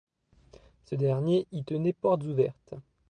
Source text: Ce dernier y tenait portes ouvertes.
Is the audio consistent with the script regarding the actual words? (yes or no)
yes